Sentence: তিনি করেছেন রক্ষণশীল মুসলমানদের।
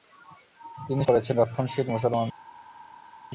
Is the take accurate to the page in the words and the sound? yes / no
yes